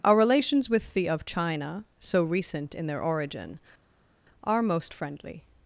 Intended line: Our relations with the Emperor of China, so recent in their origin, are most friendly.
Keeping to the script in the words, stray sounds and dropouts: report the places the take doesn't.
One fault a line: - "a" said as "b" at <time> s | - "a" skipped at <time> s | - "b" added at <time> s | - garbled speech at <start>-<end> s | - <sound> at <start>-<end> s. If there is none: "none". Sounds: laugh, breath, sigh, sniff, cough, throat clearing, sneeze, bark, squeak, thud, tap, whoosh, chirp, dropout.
- "Emperor" skipped at 1.1 s